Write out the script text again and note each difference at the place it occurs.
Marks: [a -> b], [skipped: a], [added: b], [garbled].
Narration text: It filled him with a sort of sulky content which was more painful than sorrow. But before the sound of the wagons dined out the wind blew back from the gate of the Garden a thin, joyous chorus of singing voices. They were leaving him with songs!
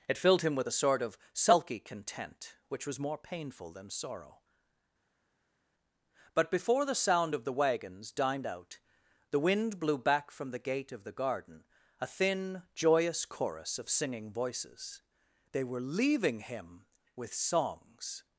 It filled him with a sort of sulky content which was more painful than sorrow. But before the sound of the wagons dined out the wind blew back from the gate of the Garden a thin, joyous chorus of singing voices. They were leaving him with songs!